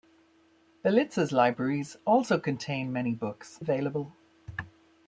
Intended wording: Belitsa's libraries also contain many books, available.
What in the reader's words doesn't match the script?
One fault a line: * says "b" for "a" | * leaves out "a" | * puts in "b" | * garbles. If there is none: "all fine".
all fine